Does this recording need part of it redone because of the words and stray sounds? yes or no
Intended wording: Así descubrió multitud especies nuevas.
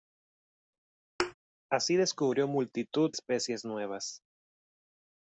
yes